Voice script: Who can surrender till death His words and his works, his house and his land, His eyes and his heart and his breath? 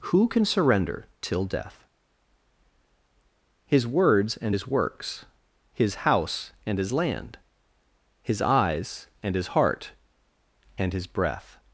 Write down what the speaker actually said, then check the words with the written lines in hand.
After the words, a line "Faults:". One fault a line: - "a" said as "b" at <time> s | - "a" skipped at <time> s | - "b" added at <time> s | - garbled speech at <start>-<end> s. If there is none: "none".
Who can surrender till death His words and his works, his house and his land, His eyes and his heart and his breath?
Faults:
none